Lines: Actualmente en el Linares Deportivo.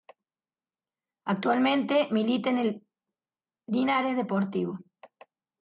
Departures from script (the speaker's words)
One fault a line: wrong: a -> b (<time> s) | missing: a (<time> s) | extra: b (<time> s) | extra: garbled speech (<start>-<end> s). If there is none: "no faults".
extra: milita (2.1 s)